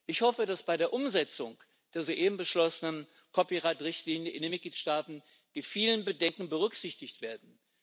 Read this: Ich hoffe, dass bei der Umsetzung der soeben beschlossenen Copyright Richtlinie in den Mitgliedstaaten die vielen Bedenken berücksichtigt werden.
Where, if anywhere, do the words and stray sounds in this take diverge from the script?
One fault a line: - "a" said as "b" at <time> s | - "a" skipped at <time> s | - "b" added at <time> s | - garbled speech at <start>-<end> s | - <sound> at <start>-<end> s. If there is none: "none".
none